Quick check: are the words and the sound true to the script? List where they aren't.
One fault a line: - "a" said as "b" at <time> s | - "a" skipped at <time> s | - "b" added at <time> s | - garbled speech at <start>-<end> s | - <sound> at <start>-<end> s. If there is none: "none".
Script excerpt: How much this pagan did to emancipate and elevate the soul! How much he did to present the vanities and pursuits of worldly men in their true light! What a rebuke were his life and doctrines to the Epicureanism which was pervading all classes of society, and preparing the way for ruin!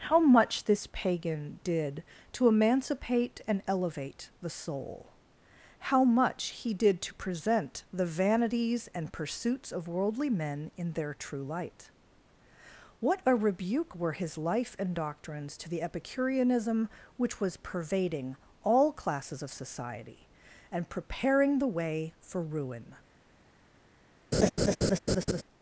- laugh at 24.3-25.4 s